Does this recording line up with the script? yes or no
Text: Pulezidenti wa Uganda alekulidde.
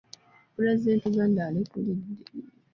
no